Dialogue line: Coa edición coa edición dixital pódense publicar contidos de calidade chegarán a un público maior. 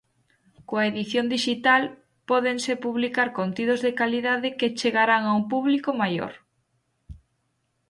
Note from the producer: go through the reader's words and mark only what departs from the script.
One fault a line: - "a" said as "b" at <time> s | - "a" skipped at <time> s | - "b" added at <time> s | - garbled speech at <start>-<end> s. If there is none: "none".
- "coa edición" skipped at 1.2 s
- "que" added at 4.6 s